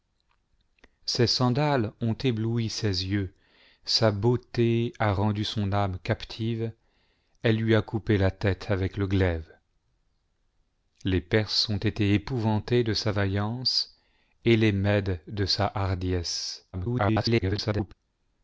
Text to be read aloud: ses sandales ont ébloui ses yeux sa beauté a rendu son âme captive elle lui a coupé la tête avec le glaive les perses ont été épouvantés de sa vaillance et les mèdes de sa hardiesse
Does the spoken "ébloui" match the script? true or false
true